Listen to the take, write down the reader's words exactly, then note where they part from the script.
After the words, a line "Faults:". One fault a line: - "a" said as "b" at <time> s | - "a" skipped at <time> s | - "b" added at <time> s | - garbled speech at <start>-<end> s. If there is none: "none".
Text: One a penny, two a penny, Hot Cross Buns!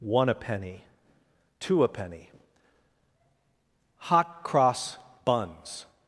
One a penny, two a penny, Hot Cross Buns!
Faults:
none